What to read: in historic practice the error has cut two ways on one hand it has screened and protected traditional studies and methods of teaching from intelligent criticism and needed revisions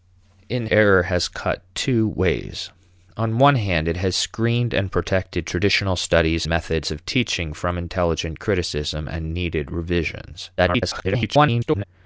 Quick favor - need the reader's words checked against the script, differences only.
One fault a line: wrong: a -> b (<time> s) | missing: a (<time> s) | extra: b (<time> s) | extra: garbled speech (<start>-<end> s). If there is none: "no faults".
missing: historic practice the (0.7 s)
missing: and (6.5 s)
extra: garbled speech (10.6-11.8 s)